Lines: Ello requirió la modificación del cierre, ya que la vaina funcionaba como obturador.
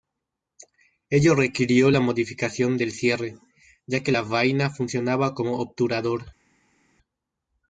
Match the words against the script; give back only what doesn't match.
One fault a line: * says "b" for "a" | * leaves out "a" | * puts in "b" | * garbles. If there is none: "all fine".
all fine